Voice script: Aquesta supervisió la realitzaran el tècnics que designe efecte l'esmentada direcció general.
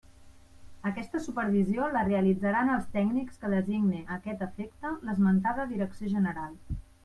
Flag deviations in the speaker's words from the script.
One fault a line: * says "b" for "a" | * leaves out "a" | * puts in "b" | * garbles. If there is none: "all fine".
* says "els" for "el"
* puts in "a aquest"